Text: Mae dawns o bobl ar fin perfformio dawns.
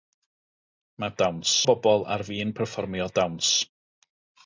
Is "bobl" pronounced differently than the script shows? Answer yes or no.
no